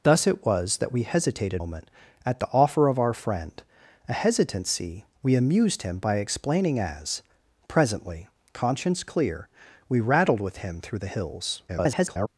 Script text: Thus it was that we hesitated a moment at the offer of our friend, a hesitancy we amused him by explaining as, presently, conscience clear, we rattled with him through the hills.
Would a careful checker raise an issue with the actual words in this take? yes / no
yes